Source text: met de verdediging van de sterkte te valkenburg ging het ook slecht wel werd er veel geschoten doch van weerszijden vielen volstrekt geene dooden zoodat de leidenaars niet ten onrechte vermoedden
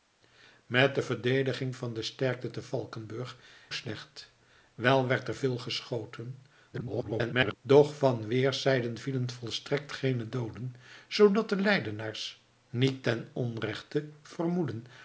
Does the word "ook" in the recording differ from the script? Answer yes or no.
yes